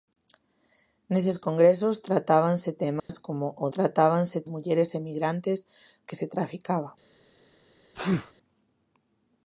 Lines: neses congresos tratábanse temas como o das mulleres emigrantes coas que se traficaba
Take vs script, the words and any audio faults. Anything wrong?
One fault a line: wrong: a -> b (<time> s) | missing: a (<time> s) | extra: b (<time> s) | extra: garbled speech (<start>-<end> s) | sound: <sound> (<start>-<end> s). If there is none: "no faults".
sound: dropout (3.0-3.1 s)
wrong: das -> tratábanse (3.8 s)
missing: coas (5.6 s)
sound: sneeze (7.9-8.3 s)